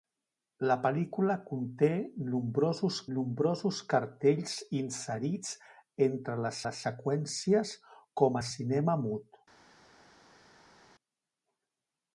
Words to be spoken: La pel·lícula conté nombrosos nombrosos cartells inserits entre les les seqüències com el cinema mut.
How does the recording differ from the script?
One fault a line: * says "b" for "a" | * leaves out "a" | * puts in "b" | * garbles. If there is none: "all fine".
all fine